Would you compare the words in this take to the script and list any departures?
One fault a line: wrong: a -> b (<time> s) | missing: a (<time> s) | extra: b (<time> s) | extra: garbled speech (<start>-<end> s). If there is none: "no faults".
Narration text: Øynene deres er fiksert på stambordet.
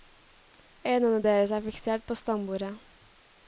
no faults